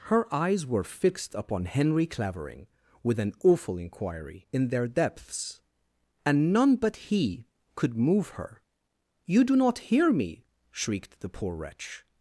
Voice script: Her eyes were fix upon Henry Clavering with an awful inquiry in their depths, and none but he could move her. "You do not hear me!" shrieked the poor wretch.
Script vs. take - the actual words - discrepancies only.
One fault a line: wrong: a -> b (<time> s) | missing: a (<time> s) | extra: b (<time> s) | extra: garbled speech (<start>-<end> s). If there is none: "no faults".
wrong: fix -> fixed (0.8 s)